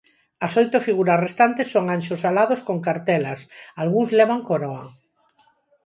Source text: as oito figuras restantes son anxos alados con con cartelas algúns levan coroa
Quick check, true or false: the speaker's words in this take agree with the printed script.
false